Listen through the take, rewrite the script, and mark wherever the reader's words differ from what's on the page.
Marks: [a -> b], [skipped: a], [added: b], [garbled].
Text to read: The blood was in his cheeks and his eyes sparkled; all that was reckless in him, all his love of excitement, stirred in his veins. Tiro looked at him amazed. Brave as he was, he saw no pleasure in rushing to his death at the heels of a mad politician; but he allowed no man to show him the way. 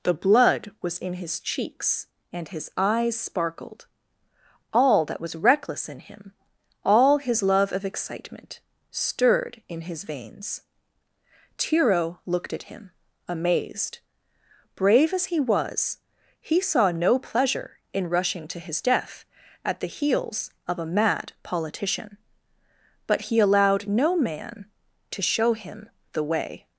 The blood was in his cheeks and his eyes sparkled; all that was reckless in him, all his love of excitement, stirred in his veins. Tiro looked at him amazed. Brave as he was, he saw no pleasure in rushing to his death at the heels of a mad politician; but he allowed no man to show him the way.